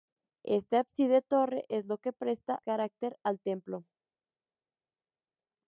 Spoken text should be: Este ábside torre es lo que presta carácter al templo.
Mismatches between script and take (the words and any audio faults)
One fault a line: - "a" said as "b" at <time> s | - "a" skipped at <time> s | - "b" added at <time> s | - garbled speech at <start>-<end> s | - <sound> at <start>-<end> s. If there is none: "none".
none